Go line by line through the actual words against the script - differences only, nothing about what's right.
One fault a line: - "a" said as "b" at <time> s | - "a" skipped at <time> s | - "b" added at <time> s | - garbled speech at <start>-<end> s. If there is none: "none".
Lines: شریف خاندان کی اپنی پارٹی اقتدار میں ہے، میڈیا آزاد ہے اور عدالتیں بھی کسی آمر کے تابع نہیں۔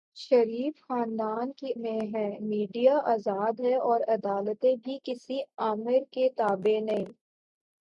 - "اپنی پارٹی اقتدار" skipped at 1.7 s